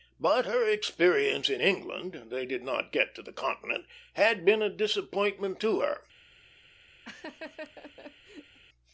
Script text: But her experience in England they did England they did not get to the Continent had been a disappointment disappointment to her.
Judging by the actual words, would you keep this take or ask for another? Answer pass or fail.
fail